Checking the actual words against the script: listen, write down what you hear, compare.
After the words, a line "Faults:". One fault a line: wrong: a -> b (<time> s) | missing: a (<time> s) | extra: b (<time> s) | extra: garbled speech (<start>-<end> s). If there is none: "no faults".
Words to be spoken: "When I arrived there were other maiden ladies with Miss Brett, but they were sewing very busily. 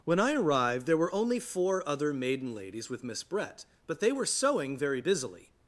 "When I arrived there were only four other maiden ladies with Miss Brett, but they were sewing very busily.
Faults:
extra: only four (1.1 s)